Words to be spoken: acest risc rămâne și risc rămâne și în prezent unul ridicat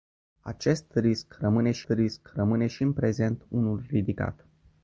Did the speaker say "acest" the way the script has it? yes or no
yes